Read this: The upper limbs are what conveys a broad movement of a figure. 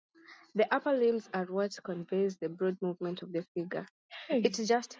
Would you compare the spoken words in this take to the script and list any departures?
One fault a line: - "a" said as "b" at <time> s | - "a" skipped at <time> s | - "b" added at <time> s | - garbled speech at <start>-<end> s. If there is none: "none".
- "a" said as "the" at 2.4 s
- "a" said as "the" at 3.3 s